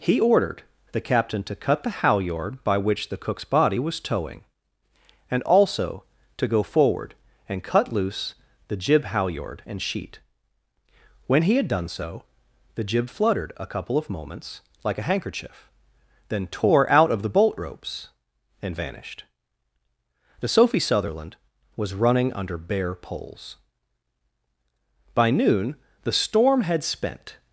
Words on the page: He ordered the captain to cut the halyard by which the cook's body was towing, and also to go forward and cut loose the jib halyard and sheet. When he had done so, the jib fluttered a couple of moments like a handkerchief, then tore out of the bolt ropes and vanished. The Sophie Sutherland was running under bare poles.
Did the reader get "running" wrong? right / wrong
right